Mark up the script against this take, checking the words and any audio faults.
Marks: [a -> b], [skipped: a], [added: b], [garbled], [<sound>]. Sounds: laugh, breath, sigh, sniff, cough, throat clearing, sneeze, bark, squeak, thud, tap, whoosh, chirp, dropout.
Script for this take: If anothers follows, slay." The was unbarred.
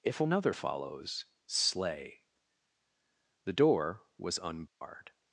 If [anothers -> another] follows, slay." The [added: door] was unbarred. [dropout]